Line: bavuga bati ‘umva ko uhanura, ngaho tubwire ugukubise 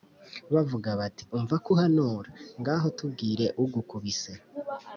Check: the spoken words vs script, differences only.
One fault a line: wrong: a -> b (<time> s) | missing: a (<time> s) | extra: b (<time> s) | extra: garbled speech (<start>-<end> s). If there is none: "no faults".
no faults